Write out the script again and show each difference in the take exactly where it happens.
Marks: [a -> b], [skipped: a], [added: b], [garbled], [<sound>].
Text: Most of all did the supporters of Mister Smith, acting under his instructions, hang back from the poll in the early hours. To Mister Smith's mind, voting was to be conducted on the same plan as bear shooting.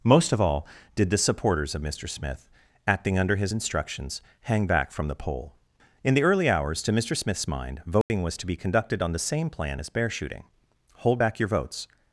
Most of all did the supporters of Mister Smith, acting under his instructions, hang back from the poll in the early hours. To Mister Smith's mind, voting [dropout] was to be conducted on the same plan as bear shooting. [added: Hold back your votes]